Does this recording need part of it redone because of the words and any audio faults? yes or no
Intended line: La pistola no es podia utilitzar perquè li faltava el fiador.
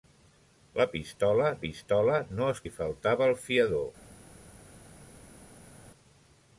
yes